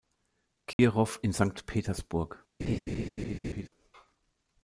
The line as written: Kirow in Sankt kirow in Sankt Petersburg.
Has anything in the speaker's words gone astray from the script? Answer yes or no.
yes